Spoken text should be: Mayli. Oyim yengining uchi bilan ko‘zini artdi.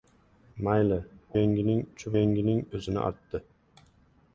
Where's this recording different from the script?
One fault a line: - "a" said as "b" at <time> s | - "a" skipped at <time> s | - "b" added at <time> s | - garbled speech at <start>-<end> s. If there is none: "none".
- "Oyim" skipped at 1.0 s
- "bilan" said as "yengining" at 2.2 s